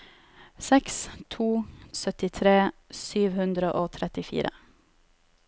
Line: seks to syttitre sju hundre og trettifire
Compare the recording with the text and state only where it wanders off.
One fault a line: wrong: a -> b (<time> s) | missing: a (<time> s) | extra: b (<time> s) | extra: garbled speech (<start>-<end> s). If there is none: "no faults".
no faults